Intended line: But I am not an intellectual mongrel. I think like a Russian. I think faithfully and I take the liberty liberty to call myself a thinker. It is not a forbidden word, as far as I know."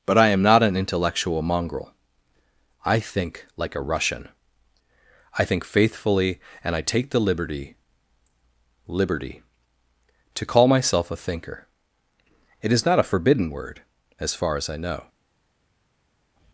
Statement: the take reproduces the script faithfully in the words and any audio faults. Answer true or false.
true